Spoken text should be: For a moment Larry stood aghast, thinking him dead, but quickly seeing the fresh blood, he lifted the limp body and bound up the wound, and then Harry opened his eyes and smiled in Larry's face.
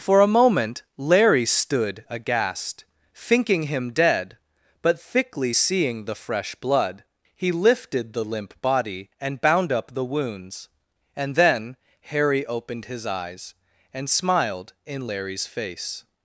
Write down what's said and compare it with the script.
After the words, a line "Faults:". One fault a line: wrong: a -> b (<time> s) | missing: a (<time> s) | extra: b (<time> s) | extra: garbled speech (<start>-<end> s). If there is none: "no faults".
For a moment Larry stood aghast, thinking him dead, but thickly seeing the fresh blood, he lifted the limp body and bound up the wounds, and then Harry opened his eyes and smiled in Larry's face.
Faults:
wrong: quickly -> thickly (5.0 s)
wrong: wound -> wounds (10.0 s)